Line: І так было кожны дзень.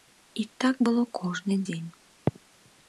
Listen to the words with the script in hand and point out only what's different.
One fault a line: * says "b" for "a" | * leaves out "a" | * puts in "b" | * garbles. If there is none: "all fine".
all fine